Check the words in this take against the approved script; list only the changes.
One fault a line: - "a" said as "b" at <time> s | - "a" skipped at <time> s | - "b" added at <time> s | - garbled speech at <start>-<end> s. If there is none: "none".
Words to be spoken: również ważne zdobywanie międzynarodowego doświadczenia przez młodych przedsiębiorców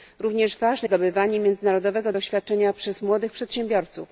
none